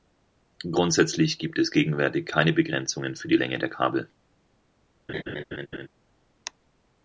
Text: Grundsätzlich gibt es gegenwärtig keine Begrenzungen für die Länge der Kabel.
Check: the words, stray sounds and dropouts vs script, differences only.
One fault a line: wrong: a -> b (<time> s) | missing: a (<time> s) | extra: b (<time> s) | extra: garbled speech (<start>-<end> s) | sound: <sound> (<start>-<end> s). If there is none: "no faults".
sound: laugh (5.1-5.9 s)